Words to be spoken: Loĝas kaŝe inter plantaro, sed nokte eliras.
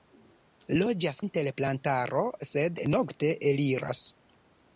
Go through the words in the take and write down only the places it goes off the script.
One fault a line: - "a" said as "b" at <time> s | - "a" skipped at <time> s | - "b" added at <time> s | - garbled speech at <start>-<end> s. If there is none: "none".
- "kaŝe" skipped at 1.2 s